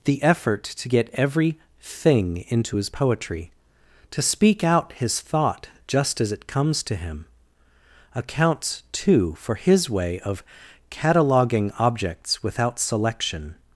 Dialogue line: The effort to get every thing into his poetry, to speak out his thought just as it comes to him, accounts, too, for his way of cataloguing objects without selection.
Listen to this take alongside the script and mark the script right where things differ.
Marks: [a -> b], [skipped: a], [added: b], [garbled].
The effort to get every thing into his poetry, to speak out his thought just as it comes to him, accounts, too, for his way of cataloguing objects without selection.